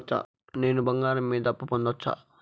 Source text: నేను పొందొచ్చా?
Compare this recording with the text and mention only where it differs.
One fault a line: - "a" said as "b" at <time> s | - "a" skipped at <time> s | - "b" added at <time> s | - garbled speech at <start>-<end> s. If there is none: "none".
- "బంగారం మీద అప్పు" added at 0.8 s